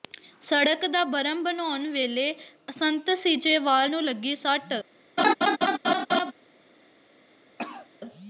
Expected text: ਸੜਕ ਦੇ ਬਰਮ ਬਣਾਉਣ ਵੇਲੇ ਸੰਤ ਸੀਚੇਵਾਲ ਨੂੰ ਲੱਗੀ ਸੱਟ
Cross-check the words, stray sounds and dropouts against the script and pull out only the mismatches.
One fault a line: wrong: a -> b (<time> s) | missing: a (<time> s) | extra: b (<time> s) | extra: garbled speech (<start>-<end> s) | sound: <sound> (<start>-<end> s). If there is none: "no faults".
wrong: ਦੇ -> ਦਾ (0.9 s)
sound: laugh (5.2-6.3 s)
sound: cough (7.6-7.9 s)